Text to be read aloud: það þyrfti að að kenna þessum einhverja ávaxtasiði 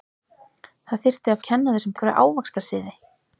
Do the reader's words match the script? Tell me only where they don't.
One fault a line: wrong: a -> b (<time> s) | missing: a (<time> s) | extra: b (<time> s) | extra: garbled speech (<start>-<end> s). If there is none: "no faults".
no faults